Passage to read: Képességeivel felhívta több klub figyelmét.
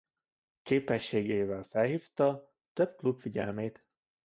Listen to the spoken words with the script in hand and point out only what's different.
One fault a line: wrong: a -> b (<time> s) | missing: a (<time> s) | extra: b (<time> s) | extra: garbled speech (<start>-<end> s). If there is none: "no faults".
no faults